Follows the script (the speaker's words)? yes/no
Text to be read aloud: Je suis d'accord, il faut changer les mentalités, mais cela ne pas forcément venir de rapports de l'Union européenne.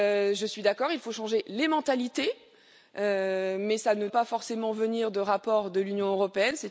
yes